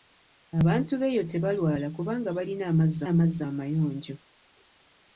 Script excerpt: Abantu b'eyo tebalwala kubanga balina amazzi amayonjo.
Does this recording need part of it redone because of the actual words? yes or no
yes